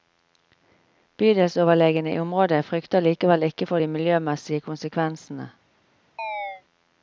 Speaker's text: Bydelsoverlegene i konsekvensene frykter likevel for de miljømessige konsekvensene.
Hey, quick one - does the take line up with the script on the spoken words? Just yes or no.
no